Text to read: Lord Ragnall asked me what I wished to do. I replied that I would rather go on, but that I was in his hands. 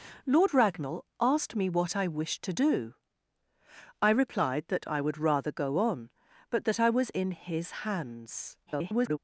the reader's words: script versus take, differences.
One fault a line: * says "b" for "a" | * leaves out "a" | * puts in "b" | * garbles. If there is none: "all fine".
* garbles